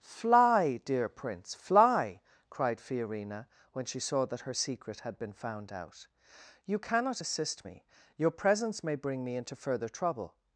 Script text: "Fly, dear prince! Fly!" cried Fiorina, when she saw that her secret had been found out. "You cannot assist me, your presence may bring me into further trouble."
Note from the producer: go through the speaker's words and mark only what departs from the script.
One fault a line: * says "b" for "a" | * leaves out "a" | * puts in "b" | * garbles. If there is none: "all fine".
all fine